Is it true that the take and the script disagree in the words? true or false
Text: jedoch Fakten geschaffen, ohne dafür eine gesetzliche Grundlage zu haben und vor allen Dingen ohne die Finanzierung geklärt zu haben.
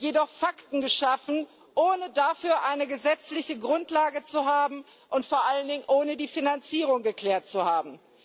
false